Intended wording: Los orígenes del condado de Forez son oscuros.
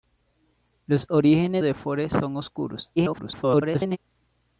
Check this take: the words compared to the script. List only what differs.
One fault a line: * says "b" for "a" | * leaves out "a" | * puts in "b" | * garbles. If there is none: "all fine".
* leaves out "del condado"
* garbles